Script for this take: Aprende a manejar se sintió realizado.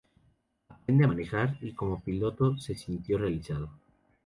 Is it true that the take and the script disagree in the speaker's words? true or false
true